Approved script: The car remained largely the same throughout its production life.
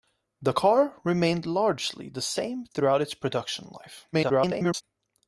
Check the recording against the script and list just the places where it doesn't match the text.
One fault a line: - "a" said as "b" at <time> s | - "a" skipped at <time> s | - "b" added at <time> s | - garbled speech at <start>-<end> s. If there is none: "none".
- garbled speech at 4.1-4.8 s